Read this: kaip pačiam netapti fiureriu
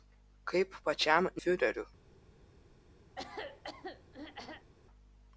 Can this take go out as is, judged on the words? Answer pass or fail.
fail